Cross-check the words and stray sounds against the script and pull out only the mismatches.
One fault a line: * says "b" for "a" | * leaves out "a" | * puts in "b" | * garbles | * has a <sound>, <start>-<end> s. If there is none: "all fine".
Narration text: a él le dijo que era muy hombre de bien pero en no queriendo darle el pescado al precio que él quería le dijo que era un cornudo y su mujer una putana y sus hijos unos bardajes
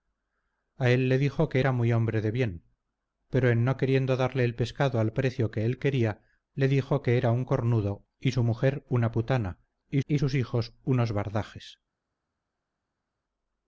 * puts in "y"